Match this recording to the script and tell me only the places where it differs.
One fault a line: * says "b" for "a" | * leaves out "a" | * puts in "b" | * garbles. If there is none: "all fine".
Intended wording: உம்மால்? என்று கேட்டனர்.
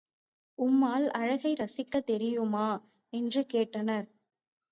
* puts in "அழகை ரசிக்கத் தெரியுமா"